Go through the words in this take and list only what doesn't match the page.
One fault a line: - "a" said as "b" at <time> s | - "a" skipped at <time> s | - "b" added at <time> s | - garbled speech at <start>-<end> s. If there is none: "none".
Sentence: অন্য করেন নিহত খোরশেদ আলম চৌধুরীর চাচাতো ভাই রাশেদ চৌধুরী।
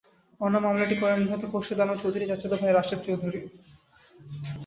- "মামলাটি" added at 0.6 s